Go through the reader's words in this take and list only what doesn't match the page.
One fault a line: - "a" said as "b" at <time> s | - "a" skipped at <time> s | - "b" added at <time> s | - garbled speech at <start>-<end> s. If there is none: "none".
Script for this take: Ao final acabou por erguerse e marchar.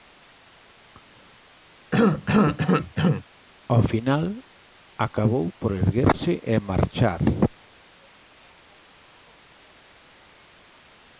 none